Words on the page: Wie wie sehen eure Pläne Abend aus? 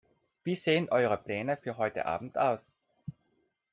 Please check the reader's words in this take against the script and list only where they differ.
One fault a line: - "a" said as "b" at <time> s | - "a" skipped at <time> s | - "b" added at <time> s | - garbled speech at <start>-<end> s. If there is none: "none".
- "wie" skipped at 0.6 s
- "für heute" added at 1.6 s